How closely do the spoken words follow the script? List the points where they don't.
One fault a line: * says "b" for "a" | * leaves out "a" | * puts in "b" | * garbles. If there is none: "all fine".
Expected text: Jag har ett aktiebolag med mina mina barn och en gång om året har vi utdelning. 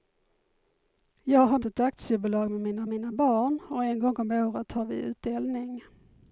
all fine